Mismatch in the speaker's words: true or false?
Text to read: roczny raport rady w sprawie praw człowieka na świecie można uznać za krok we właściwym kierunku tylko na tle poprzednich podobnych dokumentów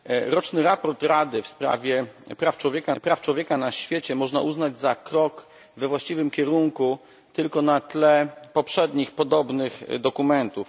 true